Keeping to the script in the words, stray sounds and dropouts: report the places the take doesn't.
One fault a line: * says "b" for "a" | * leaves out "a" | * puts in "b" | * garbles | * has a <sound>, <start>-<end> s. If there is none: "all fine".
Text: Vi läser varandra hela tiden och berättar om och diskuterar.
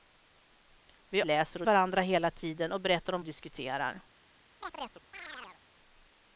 * has a chirp, 4.6-5.6 s